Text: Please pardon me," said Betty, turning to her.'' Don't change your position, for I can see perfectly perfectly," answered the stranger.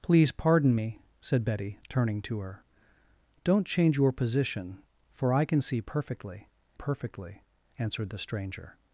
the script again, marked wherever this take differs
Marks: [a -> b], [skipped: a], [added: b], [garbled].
Please pardon me," said Betty, turning to her.'' Don't change your position, for I can see perfectly perfectly," answered the stranger.